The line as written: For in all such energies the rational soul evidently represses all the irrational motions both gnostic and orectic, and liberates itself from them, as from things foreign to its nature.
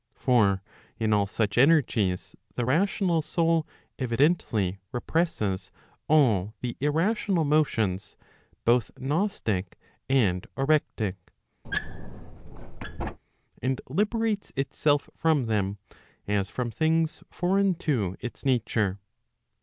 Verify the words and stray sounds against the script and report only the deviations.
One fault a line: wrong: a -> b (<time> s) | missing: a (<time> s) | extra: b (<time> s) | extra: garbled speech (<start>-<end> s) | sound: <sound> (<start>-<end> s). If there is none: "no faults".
sound: squeak (11.6-13.2 s)